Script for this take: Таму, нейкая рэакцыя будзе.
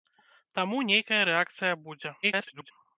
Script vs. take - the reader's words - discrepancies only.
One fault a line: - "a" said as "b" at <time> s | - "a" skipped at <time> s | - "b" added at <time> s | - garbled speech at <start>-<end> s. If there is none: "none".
- garbled speech at 2.2-2.7 s